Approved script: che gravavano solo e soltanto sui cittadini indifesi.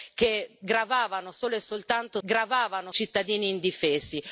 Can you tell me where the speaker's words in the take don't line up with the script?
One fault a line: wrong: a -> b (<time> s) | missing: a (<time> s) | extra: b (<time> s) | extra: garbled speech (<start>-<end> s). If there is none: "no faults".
wrong: sui -> gravavano (2.2 s)